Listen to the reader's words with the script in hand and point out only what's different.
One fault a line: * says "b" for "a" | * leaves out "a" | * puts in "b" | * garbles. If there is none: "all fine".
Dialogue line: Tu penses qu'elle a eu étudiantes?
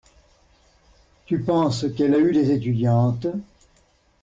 * puts in "des"